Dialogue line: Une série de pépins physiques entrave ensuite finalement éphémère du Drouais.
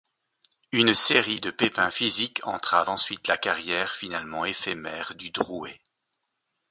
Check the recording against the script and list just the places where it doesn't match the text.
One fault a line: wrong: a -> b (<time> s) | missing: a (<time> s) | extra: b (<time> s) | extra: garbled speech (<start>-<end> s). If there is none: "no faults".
extra: la carrière (3.3 s)